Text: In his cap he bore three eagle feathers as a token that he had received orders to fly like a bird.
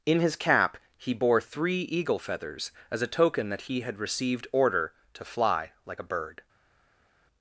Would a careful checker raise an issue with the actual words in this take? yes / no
yes